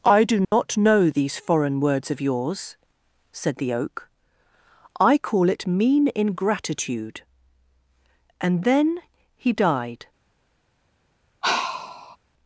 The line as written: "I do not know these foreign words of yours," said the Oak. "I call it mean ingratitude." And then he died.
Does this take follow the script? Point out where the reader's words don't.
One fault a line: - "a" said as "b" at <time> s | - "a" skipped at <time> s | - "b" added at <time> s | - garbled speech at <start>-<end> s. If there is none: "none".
none